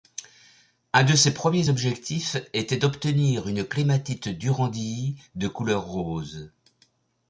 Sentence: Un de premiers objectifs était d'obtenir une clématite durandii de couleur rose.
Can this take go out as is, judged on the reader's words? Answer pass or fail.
fail